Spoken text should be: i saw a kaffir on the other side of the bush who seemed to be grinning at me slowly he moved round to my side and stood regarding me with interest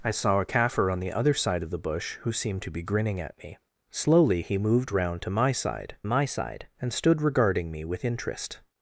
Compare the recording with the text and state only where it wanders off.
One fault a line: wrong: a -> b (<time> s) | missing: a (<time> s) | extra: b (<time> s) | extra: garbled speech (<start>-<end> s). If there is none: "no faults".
extra: my side (6.1 s)